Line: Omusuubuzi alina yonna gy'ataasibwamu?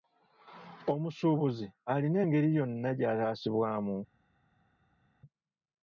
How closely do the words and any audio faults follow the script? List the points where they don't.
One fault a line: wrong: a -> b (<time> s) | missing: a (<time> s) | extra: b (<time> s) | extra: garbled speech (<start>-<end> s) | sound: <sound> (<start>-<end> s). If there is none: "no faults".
extra: engeri (2.2 s)